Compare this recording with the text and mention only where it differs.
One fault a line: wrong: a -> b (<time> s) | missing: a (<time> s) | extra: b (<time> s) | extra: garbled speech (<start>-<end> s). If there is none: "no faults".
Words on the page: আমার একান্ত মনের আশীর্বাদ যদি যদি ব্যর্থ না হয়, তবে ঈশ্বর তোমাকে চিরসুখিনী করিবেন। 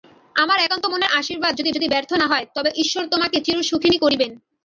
no faults